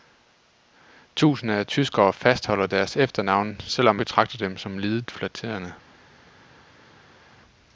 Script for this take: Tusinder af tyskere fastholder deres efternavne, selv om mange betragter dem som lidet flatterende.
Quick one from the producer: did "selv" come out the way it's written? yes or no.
yes